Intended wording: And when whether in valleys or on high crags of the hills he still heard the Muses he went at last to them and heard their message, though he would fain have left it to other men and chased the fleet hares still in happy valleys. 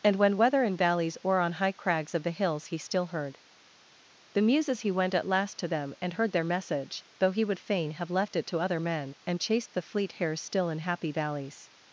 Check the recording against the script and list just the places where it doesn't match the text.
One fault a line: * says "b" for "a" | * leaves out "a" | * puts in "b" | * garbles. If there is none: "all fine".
all fine